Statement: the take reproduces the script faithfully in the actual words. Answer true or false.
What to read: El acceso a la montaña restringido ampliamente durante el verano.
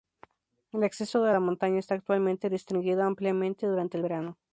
false